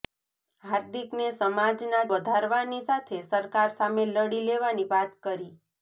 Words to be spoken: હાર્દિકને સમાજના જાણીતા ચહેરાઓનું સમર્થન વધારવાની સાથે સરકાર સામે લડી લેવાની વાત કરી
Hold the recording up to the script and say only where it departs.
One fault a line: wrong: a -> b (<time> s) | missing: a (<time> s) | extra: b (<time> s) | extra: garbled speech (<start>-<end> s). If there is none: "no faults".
missing: જાણીતા ચહેરાઓનું સમર્થન (2.0 s)